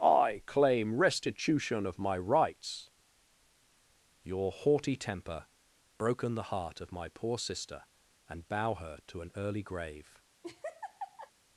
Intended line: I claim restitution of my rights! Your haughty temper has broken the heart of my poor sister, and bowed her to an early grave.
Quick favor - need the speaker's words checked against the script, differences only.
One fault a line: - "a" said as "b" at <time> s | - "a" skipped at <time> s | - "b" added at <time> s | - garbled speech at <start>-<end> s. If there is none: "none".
- "has" skipped at 5.5 s
- "bowed" said as "bow" at 8.5 s